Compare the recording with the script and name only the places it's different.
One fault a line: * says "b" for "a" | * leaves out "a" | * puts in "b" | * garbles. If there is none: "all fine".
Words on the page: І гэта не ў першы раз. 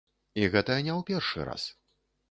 all fine